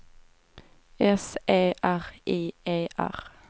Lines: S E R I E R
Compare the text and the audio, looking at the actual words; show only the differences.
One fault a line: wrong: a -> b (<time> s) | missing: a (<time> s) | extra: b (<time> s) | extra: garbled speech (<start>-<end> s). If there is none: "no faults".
no faults